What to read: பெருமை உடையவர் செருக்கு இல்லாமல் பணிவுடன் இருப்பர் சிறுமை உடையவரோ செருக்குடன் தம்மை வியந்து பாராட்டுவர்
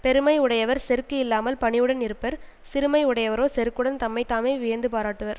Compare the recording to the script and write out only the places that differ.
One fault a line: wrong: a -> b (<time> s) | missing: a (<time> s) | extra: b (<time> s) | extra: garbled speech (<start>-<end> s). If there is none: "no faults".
extra: தாமே (4.2 s)